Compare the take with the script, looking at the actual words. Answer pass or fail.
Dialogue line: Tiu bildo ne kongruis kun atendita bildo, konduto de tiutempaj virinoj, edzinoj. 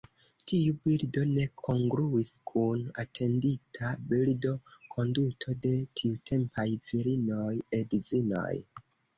pass